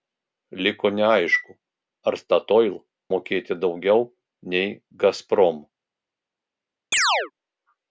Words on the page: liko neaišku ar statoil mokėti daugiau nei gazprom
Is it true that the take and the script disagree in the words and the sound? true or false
true